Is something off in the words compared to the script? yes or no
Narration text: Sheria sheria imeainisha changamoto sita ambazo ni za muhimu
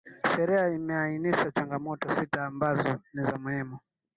yes